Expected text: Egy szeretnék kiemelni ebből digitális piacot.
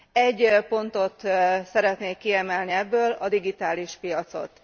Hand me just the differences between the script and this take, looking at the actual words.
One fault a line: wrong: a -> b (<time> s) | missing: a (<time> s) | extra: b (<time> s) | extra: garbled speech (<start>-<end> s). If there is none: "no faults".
extra: pontot (0.7 s)
extra: a (3.1 s)